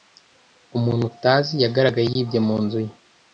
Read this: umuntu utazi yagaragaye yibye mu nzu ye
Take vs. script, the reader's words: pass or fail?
pass